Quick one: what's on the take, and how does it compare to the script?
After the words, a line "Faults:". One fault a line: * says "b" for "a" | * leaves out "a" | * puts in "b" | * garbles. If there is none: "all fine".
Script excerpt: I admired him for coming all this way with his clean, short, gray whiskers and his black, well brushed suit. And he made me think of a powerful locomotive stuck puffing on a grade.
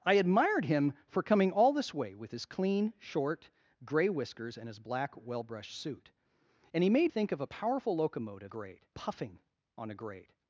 I admired him for coming all this way with his clean, short, gray whiskers and his black, well brushed suit. And he made think of a powerful locomotive grade puffing on a grade.
Faults:
* leaves out "me"
* says "grade" for "stuck"